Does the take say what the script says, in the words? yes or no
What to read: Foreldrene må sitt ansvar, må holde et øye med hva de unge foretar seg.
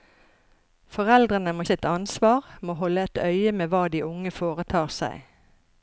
yes